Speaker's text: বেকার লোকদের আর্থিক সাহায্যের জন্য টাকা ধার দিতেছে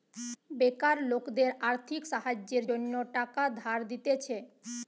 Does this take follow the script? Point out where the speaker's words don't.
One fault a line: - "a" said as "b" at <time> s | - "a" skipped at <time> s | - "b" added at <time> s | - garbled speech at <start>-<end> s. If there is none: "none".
none